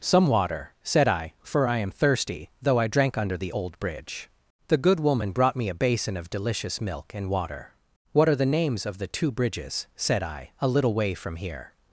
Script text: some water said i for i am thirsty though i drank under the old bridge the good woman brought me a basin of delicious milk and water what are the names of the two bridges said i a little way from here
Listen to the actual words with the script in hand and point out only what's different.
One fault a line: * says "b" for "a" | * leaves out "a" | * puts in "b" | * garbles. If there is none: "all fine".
all fine